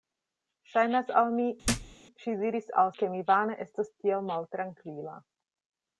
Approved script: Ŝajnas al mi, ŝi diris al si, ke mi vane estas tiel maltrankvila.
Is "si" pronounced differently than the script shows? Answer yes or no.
yes